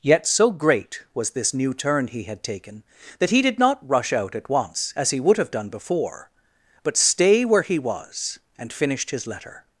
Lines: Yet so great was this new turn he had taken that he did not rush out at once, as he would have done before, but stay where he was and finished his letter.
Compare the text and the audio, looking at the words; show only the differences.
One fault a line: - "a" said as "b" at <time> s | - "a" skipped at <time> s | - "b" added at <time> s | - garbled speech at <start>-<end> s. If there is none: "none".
none